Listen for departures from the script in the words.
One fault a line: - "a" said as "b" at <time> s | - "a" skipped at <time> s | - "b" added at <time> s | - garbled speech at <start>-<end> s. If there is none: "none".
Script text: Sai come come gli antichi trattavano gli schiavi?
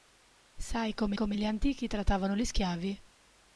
none